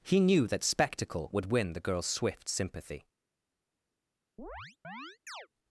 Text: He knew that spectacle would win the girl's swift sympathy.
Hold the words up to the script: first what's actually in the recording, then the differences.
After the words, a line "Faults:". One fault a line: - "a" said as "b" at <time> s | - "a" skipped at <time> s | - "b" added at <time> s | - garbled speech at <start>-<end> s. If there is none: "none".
He knew that spectacle would win the girl's swift sympathy.
Faults:
none